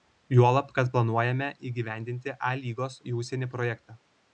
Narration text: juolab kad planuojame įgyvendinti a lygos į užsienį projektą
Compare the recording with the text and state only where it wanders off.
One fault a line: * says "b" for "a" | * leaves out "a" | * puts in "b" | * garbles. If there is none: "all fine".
all fine